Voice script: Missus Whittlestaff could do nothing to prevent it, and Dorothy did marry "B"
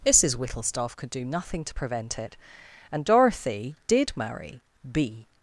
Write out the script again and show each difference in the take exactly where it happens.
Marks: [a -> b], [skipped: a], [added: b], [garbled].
Missus Whittlestaff could do nothing to prevent it, and Dorothy did marry "B"